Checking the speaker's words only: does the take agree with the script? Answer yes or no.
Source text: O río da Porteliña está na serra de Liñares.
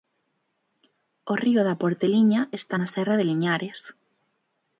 yes